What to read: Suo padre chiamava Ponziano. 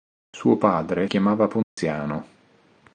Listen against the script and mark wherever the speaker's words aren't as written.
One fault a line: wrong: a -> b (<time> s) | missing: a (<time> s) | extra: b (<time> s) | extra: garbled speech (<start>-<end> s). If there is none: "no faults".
no faults